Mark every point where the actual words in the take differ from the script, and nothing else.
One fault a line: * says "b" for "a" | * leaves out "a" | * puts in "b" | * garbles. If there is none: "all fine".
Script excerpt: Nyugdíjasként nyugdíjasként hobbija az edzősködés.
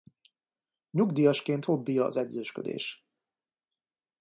* leaves out "nyugdíjasként"